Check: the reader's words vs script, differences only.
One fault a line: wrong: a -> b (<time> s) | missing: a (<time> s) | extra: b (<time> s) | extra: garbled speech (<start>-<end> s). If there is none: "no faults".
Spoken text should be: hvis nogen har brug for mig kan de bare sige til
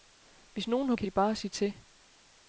missing: brug for mig (0.9 s)